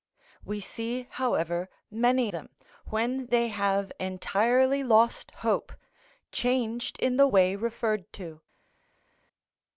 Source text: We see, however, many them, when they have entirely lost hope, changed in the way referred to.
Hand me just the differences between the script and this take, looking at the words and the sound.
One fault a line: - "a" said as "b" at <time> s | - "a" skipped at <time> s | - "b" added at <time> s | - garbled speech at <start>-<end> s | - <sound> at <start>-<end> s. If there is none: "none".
none